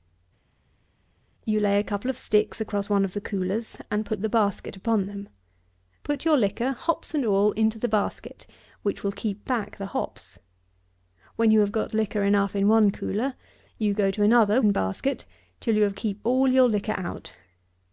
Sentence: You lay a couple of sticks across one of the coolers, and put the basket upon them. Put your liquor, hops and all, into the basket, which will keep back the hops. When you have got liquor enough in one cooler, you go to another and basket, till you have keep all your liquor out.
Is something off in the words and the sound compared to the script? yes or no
no